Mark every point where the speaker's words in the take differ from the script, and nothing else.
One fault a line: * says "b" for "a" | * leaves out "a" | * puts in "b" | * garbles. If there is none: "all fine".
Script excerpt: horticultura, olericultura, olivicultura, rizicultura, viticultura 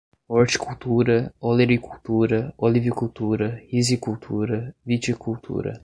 all fine